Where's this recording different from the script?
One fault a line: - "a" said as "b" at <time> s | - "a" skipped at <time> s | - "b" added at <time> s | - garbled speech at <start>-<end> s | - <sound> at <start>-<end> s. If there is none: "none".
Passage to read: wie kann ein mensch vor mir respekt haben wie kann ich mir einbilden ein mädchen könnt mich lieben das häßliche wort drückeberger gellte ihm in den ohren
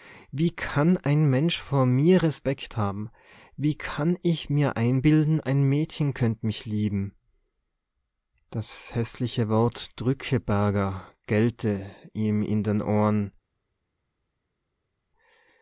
none